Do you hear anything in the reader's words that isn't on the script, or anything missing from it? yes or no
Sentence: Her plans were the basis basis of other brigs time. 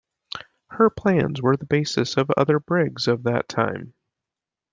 yes